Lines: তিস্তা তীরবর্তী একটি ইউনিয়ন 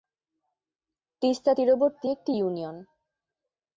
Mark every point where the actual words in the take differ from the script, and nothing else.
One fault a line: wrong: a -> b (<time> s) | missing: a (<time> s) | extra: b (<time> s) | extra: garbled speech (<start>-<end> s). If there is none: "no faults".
no faults